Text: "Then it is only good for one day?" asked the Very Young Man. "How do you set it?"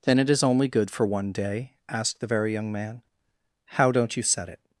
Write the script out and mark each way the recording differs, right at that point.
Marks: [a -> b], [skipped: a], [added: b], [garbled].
"Then it is only good for one day?" asked the Very Young Man. "How [do -> don't] you set it?"